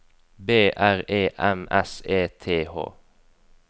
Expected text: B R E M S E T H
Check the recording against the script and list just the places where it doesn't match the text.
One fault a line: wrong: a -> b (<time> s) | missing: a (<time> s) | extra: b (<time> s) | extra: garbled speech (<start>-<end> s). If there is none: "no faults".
no faults